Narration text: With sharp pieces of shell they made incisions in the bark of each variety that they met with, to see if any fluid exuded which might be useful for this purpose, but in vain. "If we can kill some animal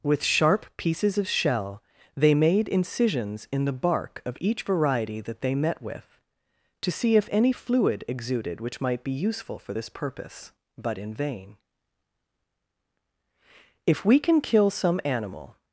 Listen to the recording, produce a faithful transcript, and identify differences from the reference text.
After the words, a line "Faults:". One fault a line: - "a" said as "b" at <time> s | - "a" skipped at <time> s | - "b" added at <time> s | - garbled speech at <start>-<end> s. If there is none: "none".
With sharp pieces of shell they made incisions in the bark of each variety that they met with, to see if any fluid exuded which might be useful for this purpose, but in vain. "If we can kill some animal
Faults:
none